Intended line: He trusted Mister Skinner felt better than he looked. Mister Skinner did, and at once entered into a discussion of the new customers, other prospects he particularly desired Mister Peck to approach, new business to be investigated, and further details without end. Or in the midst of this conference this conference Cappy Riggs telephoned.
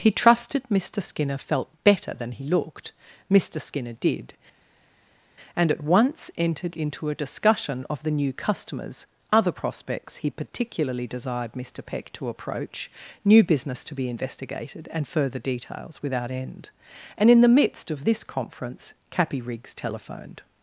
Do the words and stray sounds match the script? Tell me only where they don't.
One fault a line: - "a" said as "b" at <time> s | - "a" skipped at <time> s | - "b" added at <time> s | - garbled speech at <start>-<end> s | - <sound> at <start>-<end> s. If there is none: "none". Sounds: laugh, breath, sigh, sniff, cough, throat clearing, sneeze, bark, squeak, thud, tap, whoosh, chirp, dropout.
- "Or" said as "And" at 17.2 s
- "this conference" skipped at 18.9 s